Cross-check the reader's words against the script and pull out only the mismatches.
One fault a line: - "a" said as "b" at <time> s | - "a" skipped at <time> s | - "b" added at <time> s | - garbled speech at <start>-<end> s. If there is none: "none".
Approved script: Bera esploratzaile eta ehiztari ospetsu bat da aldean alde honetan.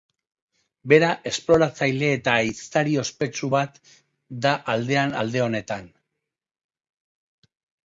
none